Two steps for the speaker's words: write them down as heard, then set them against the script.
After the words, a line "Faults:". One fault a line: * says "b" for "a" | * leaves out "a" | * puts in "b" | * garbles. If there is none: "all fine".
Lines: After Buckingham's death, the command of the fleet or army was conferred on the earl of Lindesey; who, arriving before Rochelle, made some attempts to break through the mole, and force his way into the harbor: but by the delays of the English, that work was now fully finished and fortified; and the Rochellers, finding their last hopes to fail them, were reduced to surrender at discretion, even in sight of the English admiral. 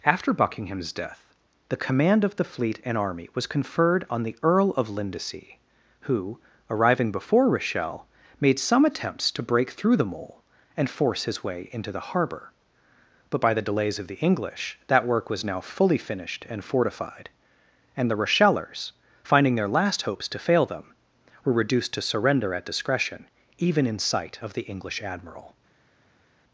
After Buckingham's death, the command of the fleet and army was conferred on the earl of Lindesey; who, arriving before Rochelle, made some attempts to break through the mole, and force his way into the harbor: but by the delays of the English, that work was now fully finished and fortified; and the Rochellers, finding their last hopes to fail them, were reduced to surrender at discretion, even in sight of the English admiral.
Faults:
* says "and" for "or"